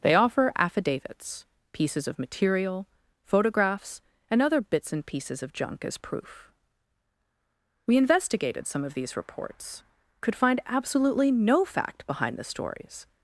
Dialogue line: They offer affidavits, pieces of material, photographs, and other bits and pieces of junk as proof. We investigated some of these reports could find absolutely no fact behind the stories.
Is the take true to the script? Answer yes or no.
yes